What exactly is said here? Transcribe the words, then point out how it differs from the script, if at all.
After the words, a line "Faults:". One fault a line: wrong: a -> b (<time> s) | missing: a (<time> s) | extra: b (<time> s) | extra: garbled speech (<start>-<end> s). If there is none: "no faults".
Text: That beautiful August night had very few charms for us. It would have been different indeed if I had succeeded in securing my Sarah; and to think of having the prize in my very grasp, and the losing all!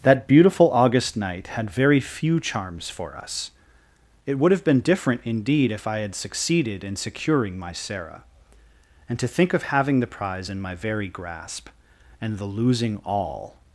That beautiful August night had very few charms for us. It would have been different indeed if I had succeeded in securing my Sarah; and to think of having the prize in my very grasp, and the losing all!
Faults:
no faults